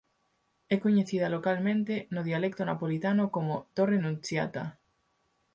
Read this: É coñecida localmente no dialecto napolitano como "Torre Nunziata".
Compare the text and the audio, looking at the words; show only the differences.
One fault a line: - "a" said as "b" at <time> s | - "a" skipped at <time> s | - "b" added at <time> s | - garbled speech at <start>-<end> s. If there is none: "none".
none